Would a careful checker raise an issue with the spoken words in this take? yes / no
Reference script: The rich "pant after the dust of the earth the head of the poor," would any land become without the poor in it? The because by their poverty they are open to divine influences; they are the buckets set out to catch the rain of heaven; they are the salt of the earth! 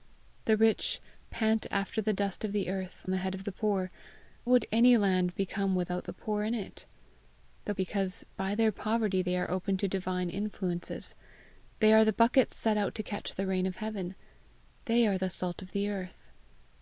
no